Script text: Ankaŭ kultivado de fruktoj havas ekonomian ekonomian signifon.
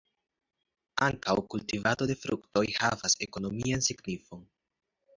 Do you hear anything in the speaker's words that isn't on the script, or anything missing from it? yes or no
yes